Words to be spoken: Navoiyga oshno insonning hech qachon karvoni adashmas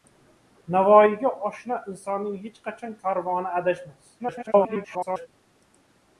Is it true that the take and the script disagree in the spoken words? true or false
true